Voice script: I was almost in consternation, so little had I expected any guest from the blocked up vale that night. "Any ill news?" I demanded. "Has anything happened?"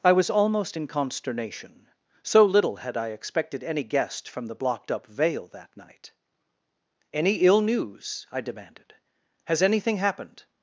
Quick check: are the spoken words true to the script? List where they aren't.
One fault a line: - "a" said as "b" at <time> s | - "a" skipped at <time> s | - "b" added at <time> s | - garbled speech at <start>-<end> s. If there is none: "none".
none